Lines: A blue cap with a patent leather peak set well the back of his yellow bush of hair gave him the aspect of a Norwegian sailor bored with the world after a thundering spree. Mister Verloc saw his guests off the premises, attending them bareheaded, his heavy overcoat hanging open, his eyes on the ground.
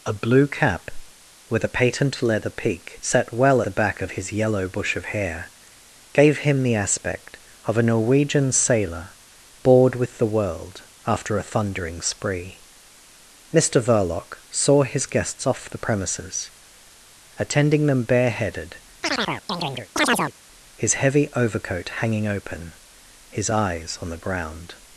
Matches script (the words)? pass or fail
pass